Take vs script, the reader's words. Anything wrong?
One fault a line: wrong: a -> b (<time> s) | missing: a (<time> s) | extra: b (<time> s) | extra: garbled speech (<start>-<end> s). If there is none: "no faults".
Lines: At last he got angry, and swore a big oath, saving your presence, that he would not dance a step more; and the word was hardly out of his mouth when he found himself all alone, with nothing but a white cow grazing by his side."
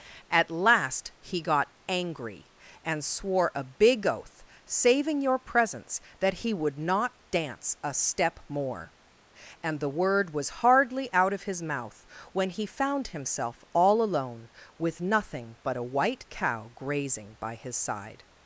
no faults